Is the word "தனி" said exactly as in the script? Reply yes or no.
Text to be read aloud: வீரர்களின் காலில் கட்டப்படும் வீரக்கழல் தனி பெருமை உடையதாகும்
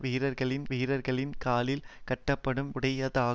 no